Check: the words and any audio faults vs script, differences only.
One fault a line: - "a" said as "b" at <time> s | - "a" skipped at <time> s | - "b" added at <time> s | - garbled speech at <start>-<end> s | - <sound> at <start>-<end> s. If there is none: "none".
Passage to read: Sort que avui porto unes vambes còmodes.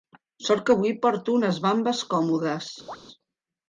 - chirp at 2.9-3.0 s